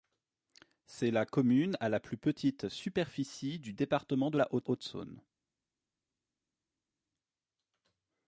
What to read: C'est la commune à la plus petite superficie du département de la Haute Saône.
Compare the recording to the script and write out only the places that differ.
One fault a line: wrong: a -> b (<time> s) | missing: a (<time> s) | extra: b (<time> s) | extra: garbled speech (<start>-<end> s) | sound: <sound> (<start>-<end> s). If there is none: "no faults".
extra: Haute (4.7 s)